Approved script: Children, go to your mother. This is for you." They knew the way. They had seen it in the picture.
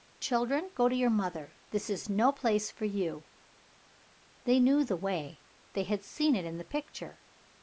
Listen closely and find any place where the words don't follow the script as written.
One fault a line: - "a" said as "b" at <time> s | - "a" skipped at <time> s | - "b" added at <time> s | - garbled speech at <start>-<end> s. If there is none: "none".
- "no place" added at 2.1 s